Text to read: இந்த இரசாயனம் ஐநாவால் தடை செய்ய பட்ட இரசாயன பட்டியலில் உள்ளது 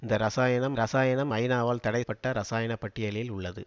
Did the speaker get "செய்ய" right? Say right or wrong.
wrong